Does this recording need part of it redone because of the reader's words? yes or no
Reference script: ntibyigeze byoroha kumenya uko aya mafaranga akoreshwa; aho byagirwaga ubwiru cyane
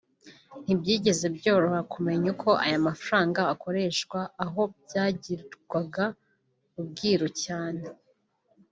no